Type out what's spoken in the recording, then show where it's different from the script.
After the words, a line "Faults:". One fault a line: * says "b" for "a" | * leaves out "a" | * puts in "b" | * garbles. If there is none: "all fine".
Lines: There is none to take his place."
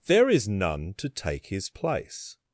There is none to take his place."
Faults:
all fine